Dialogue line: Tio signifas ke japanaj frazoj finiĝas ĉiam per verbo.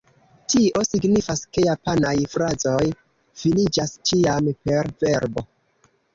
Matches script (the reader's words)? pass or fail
pass